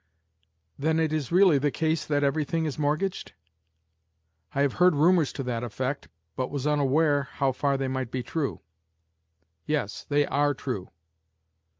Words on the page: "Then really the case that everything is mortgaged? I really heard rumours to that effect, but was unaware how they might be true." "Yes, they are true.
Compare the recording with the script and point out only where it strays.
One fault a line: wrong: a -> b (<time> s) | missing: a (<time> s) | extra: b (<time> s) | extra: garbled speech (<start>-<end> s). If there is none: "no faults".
extra: it is (1.0 s)
wrong: really -> have (4.6 s)
extra: far (7.5 s)